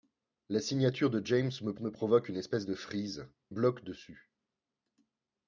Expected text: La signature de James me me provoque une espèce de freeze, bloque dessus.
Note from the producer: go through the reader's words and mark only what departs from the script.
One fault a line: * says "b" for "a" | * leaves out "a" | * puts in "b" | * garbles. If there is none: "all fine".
all fine